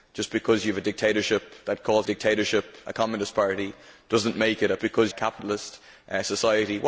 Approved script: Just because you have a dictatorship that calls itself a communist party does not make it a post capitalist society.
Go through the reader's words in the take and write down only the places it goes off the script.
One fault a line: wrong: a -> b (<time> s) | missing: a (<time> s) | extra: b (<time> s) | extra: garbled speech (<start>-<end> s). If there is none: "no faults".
wrong: itself -> dictatorship (2.1 s)
wrong: post -> because (4.8 s)